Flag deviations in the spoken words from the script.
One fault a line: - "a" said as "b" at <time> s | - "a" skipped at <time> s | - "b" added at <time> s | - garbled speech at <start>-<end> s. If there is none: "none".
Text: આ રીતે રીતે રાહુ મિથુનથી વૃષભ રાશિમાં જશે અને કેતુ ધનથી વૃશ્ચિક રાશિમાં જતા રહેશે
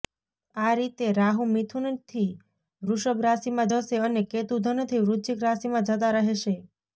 - "રીતે" skipped at 1.1 s